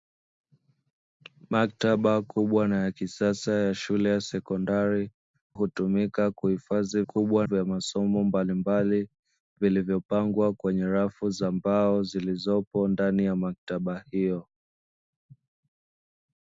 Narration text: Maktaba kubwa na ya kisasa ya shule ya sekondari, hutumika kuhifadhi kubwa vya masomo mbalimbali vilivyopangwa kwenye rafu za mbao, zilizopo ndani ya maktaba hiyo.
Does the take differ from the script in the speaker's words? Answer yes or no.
no